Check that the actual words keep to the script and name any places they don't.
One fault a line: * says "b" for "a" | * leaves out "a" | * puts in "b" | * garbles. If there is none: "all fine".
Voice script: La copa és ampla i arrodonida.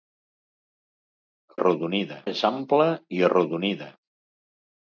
* says "arrodonida" for "copa"